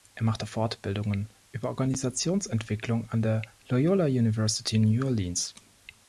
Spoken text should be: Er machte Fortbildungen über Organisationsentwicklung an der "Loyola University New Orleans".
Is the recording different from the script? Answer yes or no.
no